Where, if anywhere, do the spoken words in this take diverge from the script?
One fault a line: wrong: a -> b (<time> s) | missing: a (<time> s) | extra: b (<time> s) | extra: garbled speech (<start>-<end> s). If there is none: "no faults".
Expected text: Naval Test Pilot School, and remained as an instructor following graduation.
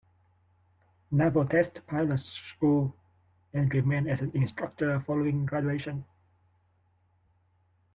no faults